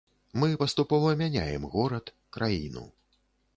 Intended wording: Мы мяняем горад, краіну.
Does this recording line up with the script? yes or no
no